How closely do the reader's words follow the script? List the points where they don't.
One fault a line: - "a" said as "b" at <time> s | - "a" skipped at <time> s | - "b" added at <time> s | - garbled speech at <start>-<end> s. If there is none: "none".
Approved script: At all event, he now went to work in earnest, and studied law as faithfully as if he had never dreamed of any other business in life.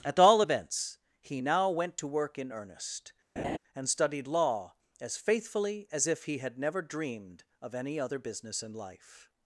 - "event" said as "events" at 0.4 s